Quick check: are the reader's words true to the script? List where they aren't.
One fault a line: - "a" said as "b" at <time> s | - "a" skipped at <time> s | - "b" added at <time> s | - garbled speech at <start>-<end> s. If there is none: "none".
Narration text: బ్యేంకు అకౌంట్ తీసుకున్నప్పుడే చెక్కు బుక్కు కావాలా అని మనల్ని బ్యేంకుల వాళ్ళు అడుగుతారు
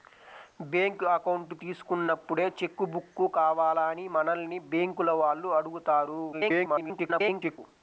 - garbled speech at 6.3-7.6 s